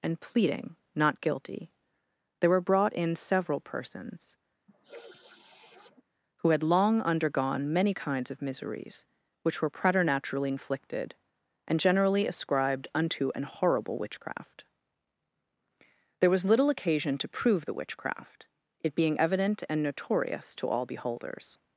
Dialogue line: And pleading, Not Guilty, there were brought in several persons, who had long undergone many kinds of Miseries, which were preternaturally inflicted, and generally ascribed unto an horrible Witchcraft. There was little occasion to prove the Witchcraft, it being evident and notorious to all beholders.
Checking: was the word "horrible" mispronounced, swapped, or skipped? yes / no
no